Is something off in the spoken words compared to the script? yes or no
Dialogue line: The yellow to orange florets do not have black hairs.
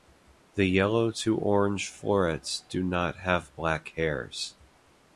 no